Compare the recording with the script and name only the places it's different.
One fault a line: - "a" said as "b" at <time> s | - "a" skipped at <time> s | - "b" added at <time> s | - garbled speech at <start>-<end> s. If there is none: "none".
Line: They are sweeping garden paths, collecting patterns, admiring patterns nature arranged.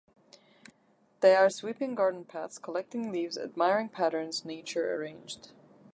- "patterns" said as "leaves" at 3.1 s